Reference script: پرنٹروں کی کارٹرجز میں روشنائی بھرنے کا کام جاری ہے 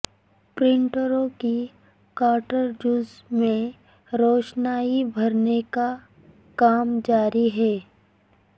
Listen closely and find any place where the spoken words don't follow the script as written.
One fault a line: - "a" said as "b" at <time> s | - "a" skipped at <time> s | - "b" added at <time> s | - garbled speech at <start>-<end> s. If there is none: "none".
none